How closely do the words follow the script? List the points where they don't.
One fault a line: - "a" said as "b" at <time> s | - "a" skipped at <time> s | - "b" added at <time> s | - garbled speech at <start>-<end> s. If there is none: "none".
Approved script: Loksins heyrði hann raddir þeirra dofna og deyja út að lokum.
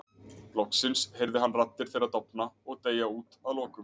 none